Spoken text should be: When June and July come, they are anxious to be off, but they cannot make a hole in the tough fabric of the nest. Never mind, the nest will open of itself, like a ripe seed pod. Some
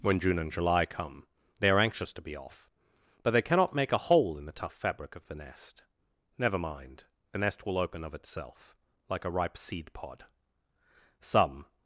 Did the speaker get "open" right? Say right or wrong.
right